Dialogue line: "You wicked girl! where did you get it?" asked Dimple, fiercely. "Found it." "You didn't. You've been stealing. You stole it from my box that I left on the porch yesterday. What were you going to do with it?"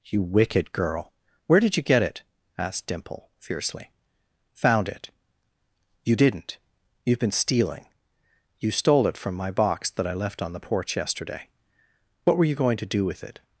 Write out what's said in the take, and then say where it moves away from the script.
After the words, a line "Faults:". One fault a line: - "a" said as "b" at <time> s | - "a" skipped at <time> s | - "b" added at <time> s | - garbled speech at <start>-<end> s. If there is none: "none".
"You wicked girl! where did you get it?" asked Dimple, fiercely. "Found it." "You didn't. You've been stealing. You stole it from my box that I left on the porch yesterday. What were you going to do with it?"
Faults:
none